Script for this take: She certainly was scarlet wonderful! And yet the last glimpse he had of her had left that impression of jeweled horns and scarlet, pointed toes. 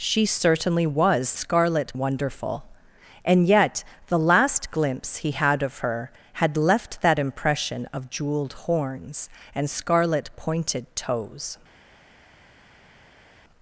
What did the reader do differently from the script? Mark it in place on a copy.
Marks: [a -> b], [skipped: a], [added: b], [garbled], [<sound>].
She certainly was scarlet wonderful! And yet the last glimpse he had of her had left that impression of jeweled horns and scarlet, pointed toes.